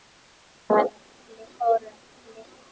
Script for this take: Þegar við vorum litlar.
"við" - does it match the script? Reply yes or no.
no